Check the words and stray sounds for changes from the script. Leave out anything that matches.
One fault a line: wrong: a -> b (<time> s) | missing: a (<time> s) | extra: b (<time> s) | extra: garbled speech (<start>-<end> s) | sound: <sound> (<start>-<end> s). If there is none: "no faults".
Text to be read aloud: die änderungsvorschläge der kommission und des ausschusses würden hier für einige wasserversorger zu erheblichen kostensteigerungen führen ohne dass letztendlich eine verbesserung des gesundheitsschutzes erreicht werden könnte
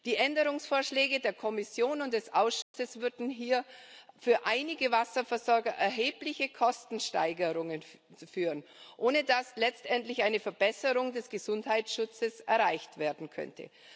sound: dropout (2.6-2.7 s)